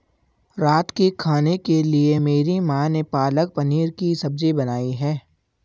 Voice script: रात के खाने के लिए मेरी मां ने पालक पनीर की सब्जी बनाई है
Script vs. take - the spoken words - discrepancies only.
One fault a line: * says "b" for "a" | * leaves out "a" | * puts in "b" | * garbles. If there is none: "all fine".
all fine